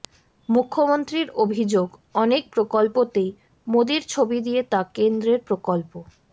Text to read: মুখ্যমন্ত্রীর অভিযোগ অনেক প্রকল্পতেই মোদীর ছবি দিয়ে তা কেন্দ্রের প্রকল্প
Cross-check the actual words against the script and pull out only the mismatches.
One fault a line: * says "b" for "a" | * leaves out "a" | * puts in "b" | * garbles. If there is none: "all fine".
all fine